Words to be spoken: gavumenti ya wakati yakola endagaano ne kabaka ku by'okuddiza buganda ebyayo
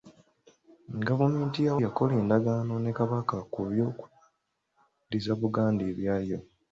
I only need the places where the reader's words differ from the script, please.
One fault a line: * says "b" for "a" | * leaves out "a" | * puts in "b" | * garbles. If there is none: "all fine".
* leaves out "wakati"